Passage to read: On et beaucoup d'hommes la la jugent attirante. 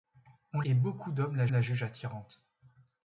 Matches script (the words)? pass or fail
pass